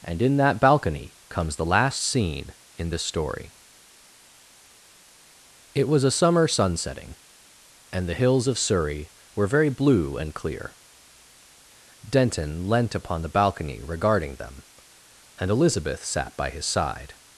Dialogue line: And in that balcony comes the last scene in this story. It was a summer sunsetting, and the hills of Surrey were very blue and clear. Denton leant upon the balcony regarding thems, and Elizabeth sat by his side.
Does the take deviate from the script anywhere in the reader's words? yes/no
yes